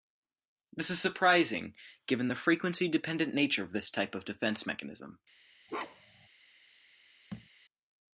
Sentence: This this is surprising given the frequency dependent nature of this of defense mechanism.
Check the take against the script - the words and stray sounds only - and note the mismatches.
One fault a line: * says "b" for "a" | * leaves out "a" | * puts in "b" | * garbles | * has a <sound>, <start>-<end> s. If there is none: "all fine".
* leaves out "this"
* puts in "type"
* has a bark, 5.7-6.3 s
* has a thud, 7.3-7.5 s